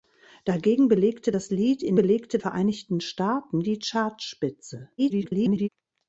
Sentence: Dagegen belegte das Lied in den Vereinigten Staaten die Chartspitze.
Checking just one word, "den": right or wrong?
wrong